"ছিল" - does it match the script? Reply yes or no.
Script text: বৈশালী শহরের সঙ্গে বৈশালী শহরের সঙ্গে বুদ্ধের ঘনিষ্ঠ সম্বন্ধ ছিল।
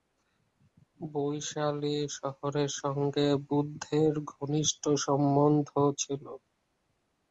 yes